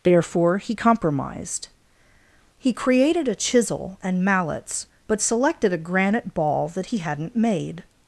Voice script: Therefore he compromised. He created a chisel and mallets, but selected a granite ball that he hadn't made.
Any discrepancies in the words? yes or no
no